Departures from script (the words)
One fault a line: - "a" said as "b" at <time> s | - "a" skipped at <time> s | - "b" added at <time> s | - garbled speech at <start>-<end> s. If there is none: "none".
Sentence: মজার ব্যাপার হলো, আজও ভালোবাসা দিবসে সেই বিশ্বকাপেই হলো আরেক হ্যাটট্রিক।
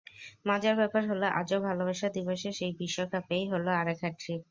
none